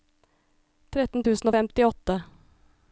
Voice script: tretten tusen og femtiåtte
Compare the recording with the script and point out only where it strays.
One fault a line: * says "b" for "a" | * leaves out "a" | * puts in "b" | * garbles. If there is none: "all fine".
all fine